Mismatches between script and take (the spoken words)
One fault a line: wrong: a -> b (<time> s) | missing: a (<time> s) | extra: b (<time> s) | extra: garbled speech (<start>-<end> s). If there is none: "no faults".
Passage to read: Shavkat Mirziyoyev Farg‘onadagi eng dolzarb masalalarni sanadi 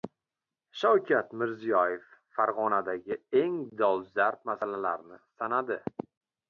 no faults